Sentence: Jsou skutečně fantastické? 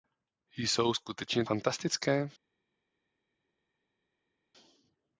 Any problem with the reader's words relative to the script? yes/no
no